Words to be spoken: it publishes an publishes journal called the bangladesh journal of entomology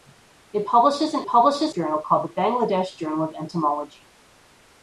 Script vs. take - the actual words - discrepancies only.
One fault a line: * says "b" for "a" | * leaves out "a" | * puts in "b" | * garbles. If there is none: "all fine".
all fine